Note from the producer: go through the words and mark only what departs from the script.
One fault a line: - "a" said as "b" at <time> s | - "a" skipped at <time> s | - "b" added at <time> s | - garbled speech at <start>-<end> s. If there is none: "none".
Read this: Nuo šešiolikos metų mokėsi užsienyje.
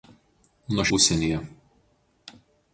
- "šešiolikos metų mokėsi" skipped at 0.8 s